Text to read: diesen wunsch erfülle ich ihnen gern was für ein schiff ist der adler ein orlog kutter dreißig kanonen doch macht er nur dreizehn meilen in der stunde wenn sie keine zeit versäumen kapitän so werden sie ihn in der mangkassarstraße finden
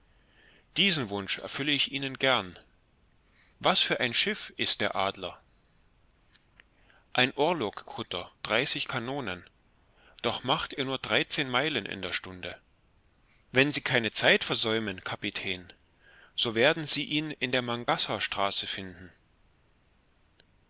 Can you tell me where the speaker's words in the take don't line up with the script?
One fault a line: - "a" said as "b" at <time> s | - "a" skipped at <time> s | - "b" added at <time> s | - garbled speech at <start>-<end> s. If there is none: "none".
none